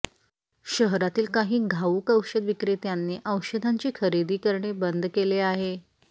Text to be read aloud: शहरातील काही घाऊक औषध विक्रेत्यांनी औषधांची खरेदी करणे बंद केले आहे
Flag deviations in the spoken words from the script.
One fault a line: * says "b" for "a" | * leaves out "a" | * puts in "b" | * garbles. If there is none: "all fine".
all fine